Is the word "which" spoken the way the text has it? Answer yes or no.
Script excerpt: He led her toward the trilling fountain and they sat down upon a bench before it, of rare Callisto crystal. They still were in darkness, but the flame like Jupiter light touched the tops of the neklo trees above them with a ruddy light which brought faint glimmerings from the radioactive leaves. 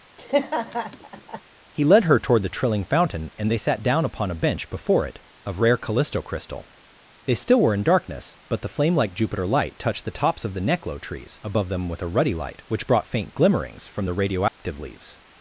yes